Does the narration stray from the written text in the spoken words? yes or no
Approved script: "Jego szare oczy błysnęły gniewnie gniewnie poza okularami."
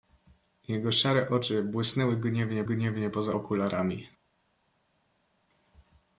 no